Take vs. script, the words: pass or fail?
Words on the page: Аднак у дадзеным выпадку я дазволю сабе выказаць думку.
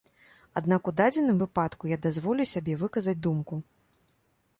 pass